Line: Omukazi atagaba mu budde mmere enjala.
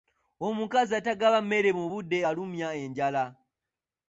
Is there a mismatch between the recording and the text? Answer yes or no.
yes